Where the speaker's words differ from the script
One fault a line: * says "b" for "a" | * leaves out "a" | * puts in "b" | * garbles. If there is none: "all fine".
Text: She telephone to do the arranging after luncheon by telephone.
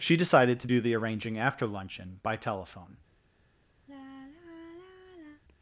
* says "decided" for "telephone"